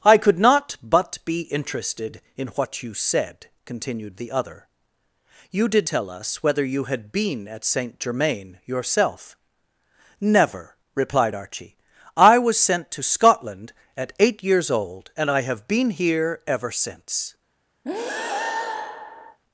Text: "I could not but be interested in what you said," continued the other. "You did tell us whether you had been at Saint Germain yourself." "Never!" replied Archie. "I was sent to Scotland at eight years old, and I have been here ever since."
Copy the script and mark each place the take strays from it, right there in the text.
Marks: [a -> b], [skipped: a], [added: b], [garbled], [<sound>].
"I could not but be interested in what you said," continued the other. "You did tell us whether you had been at Saint Germain yourself." "Never!" replied Archie. "I was sent to Scotland at eight years old, and I have been here ever since." [breath]